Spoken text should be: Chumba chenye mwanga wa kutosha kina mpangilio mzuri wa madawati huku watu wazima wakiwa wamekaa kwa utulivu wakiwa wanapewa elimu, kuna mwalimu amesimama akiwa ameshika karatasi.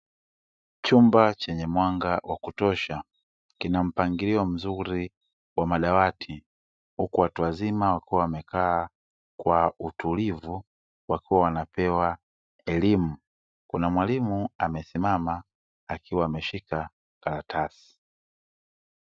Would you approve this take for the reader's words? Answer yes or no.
yes